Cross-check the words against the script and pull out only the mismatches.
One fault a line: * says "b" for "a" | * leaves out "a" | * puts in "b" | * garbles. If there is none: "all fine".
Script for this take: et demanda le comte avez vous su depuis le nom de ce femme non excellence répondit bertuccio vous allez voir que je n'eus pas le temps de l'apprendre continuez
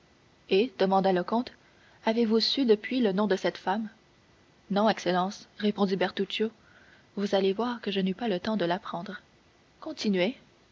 * says "cette" for "ce"